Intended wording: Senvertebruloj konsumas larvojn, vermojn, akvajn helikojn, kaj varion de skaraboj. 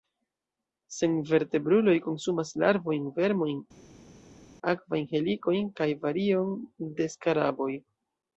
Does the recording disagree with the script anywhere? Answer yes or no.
no